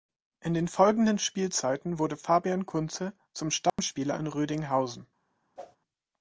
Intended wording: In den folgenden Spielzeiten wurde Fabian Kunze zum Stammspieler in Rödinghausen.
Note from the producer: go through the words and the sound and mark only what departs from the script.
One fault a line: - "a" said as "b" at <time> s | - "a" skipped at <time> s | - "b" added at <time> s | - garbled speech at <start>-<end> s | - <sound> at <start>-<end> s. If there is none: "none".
- dropout at 3.7-3.8 s
- whoosh at 5.6-5.8 s